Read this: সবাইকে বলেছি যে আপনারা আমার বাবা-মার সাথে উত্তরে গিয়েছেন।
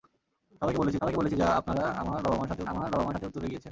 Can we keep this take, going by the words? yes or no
no